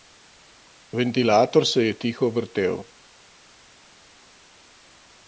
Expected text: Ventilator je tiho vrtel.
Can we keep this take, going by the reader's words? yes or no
no